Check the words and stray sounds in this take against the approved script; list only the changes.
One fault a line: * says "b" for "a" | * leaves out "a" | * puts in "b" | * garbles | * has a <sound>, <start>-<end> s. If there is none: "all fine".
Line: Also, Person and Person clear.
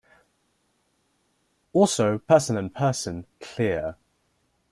all fine